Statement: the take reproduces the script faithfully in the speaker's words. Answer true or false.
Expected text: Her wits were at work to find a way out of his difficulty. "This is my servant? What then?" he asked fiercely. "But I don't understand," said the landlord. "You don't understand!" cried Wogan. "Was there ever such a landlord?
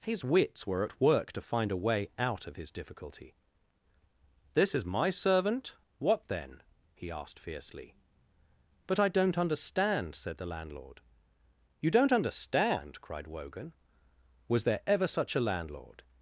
false